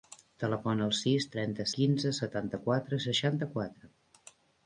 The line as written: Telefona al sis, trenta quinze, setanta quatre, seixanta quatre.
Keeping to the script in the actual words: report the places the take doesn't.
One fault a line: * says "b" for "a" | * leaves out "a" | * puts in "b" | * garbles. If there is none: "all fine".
all fine